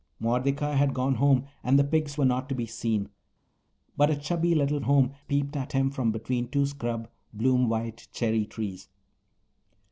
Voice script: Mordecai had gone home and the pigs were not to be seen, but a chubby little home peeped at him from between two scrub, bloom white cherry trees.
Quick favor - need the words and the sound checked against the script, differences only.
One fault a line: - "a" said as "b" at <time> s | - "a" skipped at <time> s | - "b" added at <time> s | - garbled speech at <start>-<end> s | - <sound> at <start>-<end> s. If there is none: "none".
none